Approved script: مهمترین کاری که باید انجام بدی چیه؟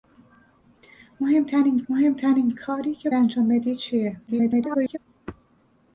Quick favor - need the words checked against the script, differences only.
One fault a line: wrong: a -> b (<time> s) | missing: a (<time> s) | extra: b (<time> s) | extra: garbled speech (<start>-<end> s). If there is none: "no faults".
extra: مهمترین (1.9 s)
missing: باید (3.1 s)
extra: garbled speech (4.3-5.0 s)